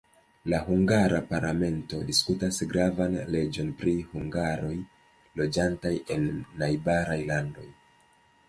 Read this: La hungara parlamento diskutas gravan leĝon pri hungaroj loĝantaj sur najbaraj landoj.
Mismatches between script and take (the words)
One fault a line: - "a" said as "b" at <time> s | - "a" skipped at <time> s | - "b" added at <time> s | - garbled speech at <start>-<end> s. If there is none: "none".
- "sur" said as "en" at 6.2 s